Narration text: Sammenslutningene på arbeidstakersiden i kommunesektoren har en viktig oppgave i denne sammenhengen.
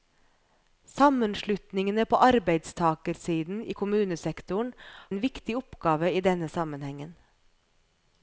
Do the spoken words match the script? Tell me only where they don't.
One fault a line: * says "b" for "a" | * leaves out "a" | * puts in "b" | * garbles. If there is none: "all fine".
* leaves out "har"